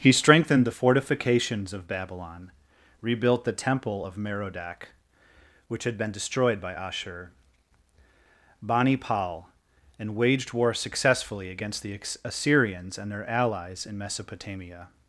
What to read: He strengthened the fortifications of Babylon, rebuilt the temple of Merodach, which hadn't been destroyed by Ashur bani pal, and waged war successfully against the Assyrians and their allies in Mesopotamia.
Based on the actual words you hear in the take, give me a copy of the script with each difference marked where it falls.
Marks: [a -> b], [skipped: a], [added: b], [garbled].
He strengthened the fortifications of Babylon, rebuilt the temple of Merodach, which [hadn't -> had] been destroyed by Ashur bani pal, and waged war successfully against the Assyrians and their allies in Mesopotamia.